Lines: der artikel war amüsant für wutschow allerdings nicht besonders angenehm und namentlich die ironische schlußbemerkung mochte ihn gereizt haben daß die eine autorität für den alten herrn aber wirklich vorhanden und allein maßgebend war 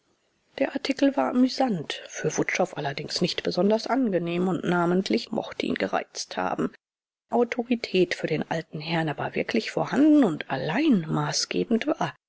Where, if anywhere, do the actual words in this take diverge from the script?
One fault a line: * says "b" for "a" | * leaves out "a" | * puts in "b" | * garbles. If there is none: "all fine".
* leaves out "die ironische schlußbemerkung"
* leaves out "daß die eine"